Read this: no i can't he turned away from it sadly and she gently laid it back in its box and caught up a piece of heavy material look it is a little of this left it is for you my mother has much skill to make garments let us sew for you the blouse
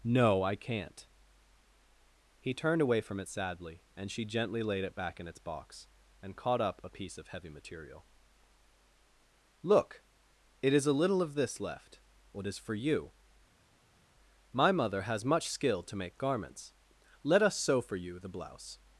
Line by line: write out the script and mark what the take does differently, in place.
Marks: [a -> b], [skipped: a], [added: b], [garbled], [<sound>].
no i can't he turned away from it sadly and she gently laid it back in its box and caught up a piece of heavy material look it is a little of this left [it -> what] is for you my mother has much skill to make garments let us sew for you the blouse